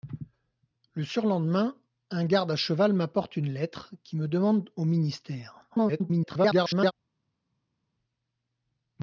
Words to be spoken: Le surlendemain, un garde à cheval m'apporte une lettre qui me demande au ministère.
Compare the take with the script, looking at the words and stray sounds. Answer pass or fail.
fail